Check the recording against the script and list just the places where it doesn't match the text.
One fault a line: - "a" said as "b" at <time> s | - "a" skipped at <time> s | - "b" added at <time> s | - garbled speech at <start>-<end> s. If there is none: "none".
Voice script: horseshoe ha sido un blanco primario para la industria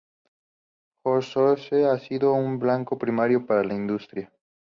none